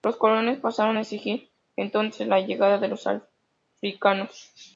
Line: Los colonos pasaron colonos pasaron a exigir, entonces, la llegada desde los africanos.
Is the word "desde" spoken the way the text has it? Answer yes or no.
no